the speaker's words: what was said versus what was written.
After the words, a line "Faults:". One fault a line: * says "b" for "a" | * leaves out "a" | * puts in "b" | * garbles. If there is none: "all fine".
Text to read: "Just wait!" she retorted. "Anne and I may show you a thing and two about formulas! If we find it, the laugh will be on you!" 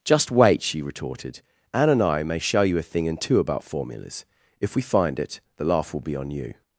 "Just wait!" she retorted. "Anne and I may show you a thing and two about formulas! If we find it, the laugh will be on you!"
Faults:
all fine